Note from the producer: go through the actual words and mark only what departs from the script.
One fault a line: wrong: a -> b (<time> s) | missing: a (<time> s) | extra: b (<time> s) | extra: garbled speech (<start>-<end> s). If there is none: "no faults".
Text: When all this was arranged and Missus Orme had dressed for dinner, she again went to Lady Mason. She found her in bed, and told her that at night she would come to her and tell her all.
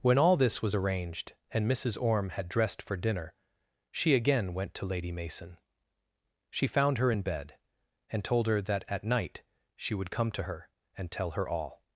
no faults